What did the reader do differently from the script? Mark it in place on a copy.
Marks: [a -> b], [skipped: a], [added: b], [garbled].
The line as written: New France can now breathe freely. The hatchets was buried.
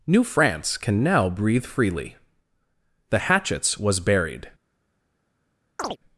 New France can now breathe freely. The hatchets was buried.